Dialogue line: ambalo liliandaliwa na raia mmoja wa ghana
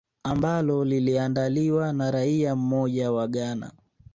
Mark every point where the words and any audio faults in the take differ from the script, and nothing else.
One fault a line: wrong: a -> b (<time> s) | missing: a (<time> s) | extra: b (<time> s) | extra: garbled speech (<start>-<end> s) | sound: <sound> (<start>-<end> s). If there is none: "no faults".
no faults